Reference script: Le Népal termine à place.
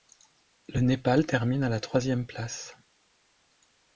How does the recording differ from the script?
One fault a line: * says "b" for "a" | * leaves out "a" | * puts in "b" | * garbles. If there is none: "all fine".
* puts in "la troisième"